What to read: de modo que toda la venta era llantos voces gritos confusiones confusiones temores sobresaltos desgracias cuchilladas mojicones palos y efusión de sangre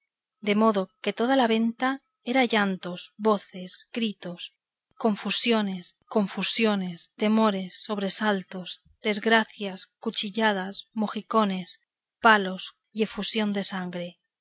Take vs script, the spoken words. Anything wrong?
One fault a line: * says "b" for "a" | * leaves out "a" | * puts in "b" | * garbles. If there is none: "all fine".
all fine